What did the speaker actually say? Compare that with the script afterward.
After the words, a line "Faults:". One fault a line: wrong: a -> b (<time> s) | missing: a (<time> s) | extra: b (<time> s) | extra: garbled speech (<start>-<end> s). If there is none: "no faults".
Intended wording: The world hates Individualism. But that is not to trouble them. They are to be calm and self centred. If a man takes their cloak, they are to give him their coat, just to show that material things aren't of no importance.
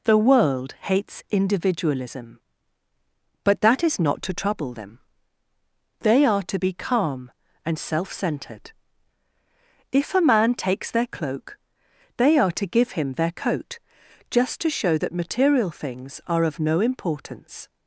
The world hates Individualism. But that is not to trouble them. They are to be calm and self centred. If a man takes their cloak, they are to give him their coat, just to show that material things are of no importance.
Faults:
wrong: aren't -> are (16.3 s)